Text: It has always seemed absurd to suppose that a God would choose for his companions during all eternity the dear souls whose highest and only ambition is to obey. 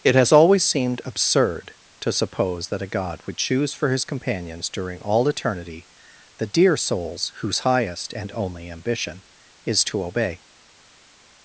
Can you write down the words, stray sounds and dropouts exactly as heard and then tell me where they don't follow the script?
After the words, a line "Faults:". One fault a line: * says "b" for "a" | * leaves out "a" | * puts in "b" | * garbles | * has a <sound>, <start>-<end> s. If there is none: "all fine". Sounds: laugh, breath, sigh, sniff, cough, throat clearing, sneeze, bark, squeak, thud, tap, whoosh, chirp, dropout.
It has always seemed absurd to suppose that a God would choose for his companions during all eternity the dear souls whose highest and only ambition is to obey.
Faults:
all fine